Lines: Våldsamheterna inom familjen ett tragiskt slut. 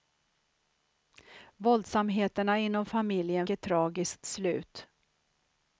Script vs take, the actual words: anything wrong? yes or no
no